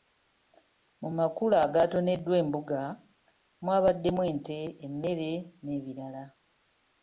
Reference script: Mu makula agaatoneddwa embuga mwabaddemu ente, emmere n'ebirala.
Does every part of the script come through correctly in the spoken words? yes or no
yes